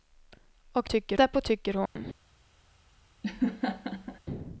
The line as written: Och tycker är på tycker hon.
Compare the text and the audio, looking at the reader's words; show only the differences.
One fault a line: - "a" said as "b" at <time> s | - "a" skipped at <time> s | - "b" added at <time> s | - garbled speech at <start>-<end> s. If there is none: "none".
none